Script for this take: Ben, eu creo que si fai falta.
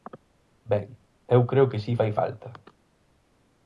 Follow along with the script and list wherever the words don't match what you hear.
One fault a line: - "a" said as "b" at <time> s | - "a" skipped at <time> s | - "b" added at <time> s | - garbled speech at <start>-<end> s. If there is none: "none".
none